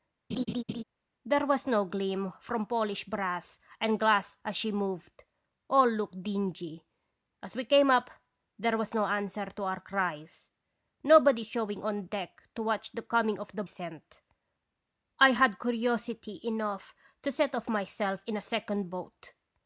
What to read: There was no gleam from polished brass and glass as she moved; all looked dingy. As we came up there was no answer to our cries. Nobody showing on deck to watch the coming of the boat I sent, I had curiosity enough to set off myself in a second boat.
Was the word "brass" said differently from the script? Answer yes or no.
no